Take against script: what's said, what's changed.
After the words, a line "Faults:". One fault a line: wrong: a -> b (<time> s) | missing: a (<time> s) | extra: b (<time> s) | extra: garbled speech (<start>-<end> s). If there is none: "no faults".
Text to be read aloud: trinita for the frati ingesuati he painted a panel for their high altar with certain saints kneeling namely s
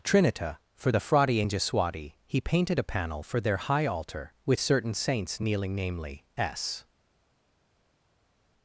trinita for the frati ingesuati he painted a panel for their high altar with certain saints kneeling namely s
Faults:
no faults